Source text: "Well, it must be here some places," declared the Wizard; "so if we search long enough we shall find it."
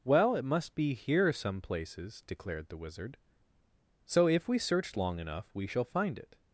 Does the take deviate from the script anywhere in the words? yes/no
no